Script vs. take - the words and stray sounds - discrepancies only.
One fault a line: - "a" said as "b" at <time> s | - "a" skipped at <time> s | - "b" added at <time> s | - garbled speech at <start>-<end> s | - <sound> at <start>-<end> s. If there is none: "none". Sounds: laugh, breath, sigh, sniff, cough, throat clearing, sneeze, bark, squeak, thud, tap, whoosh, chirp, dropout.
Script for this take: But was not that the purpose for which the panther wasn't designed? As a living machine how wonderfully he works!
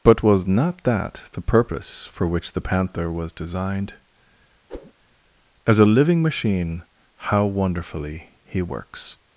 - "wasn't" said as "was" at 3.1 s
- whoosh at 4.7-4.9 s